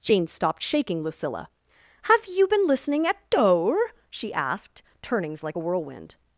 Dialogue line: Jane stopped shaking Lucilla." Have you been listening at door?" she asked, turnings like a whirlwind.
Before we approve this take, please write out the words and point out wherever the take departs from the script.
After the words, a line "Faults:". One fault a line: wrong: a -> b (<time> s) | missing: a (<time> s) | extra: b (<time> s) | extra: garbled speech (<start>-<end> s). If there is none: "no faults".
Jane stopped shaking Lucilla." Have you been listening at door?" she asked, turnings like a whirlwind.
Faults:
no faults